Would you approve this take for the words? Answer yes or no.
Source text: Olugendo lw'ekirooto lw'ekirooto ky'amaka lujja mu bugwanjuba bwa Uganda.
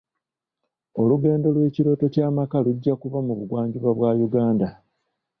no